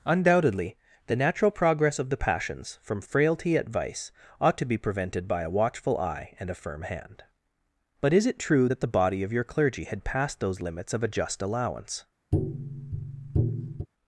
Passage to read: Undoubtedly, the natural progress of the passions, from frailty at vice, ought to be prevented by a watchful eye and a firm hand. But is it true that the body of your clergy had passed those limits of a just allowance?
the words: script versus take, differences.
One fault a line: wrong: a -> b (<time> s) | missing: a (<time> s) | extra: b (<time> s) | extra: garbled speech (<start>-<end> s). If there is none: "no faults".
no faults